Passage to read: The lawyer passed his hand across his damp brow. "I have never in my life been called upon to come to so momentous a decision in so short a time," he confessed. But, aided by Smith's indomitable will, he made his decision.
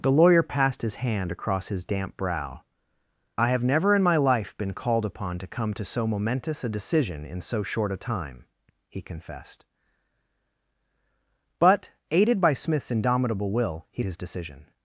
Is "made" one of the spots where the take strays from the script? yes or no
yes